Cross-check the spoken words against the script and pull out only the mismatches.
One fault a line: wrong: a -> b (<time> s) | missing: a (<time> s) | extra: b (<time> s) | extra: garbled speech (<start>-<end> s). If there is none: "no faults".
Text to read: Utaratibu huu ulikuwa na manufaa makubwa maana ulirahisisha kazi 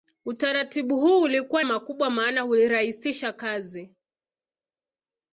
missing: na manufaa (1.6 s)